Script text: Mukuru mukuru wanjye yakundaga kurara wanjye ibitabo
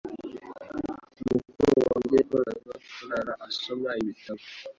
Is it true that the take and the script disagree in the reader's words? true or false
true